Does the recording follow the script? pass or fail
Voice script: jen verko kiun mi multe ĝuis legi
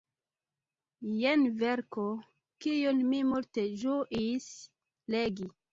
pass